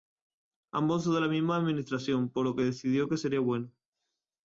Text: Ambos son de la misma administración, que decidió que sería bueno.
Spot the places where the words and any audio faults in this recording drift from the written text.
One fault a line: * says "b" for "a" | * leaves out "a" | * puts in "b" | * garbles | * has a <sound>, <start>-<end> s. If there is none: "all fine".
* puts in "por lo"